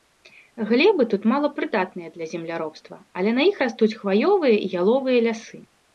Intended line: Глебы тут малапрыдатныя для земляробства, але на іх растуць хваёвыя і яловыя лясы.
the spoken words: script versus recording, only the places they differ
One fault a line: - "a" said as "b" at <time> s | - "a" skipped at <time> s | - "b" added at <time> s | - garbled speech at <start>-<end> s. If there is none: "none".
none